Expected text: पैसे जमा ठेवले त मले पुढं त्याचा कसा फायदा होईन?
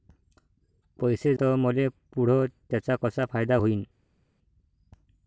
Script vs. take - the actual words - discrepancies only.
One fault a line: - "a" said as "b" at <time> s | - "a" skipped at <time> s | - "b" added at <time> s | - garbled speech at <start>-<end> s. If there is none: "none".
- "जमा ठेवले" skipped at 1.3 s